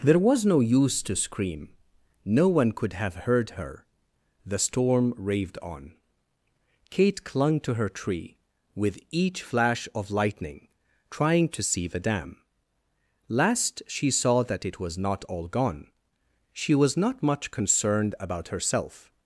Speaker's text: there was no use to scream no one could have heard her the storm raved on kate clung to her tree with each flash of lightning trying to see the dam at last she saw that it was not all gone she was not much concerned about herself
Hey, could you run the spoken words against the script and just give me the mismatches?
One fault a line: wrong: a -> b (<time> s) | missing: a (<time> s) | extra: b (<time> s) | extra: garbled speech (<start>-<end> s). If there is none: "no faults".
missing: at (12.4 s)